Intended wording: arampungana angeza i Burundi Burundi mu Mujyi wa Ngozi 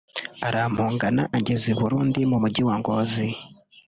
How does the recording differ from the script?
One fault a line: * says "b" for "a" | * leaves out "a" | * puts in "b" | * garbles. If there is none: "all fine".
* leaves out "Burundi"